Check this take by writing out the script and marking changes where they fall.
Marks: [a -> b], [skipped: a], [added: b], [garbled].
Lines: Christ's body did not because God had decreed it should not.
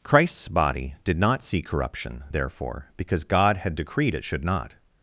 Christ's body did not [added: see corruption therefore] because God had decreed it should not.